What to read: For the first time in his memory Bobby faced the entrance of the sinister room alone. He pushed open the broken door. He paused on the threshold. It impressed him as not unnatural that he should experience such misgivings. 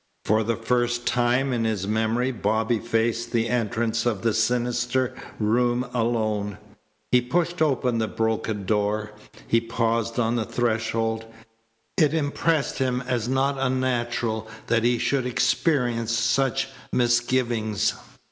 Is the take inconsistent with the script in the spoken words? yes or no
no